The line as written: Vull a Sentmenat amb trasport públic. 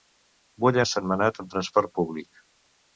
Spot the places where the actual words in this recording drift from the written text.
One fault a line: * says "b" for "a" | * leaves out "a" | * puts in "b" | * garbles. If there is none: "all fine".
all fine